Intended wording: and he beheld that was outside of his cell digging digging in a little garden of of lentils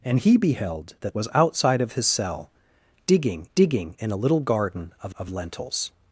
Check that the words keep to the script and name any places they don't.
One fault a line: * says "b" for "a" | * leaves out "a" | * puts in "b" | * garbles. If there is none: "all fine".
all fine